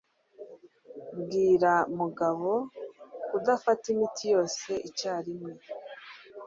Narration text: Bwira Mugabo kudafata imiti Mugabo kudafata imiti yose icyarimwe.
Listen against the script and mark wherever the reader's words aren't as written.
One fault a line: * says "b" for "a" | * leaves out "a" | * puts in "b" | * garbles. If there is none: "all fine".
* leaves out "Mugabo kudafata imiti"